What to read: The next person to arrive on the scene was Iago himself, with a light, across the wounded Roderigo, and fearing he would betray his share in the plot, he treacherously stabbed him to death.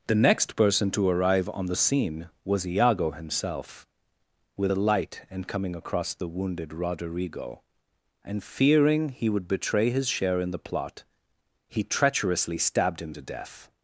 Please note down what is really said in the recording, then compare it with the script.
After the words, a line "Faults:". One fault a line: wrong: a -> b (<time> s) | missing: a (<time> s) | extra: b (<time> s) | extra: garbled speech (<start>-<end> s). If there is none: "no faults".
The next person to arrive on the scene was Iago himself, with a light, and coming across the wounded Roderigo, and fearing he would betray his share in the plot, he treacherously stabbed him to death.
Faults:
extra: and coming (5.3 s)